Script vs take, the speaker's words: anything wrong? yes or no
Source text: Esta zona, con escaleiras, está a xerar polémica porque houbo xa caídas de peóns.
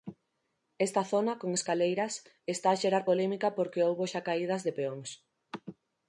no